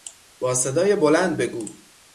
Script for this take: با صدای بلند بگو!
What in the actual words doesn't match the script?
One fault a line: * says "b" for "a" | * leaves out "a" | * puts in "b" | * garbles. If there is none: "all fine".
all fine